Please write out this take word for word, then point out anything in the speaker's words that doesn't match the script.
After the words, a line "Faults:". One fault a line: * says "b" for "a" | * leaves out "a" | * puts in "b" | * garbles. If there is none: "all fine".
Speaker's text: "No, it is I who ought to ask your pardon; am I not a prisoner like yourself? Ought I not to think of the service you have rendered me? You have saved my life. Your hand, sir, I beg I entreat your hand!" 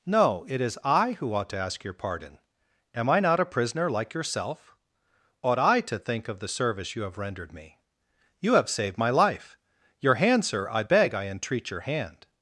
"No, it is I who ought to ask your pardon; am I not a prisoner like yourself? Ought I to think of the service you have rendered me? You have saved my life. Your hand, sir, I beg I entreat your hand!"
Faults:
* leaves out "not"